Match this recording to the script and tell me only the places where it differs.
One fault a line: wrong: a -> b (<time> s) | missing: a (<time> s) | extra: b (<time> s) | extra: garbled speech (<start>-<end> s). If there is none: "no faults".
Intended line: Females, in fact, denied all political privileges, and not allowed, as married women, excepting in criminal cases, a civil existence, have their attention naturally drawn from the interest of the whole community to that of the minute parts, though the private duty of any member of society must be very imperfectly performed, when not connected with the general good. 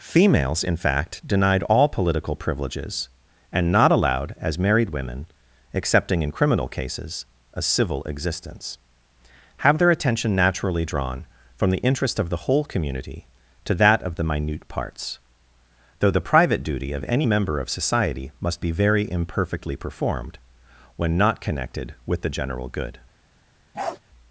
no faults